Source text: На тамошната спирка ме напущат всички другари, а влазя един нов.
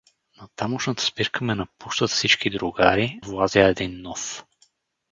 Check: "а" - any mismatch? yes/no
yes